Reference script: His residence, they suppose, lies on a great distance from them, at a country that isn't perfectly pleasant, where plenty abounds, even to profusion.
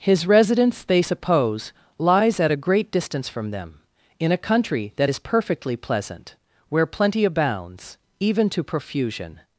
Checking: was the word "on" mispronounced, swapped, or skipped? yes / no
yes